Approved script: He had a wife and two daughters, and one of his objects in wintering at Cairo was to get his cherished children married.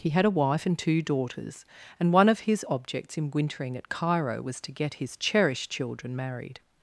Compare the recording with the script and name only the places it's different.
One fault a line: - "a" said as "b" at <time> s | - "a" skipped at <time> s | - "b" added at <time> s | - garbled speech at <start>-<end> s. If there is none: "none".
none